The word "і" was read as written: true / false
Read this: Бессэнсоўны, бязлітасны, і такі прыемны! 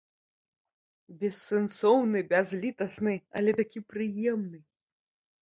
false